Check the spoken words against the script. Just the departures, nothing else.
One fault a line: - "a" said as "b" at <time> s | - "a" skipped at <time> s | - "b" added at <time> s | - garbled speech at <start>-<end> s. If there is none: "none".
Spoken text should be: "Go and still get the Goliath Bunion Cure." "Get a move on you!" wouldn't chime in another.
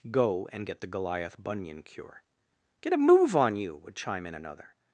- "still" skipped at 0.7 s
- "wouldn't" said as "would" at 3.8 s